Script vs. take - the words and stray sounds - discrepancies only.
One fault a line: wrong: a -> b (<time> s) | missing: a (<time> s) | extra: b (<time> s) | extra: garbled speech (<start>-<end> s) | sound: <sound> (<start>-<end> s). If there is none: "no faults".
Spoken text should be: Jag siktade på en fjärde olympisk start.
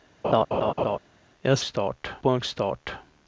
sound: laugh (0.2-1.0 s)
wrong: siktade -> start (1.6 s)
missing: fjärde olympisk (2.4 s)